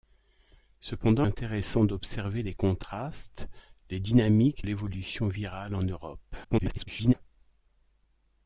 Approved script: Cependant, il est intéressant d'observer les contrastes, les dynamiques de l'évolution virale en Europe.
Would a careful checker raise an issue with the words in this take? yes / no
yes